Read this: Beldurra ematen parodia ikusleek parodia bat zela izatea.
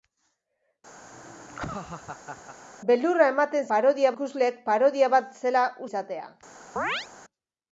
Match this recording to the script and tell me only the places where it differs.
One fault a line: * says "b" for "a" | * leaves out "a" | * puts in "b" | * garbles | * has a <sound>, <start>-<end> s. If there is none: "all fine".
* has a laugh, 1.0-2.6 s
* has a chirp, 6.8-7.1 s